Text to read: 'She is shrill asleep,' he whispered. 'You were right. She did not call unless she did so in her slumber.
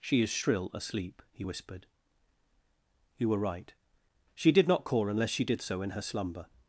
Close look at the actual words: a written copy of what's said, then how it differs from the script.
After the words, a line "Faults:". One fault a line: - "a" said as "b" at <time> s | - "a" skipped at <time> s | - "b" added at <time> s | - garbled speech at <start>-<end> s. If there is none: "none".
'She is shrill asleep,' he whispered. 'You were right. She did not call unless she did so in her slumber.
Faults:
none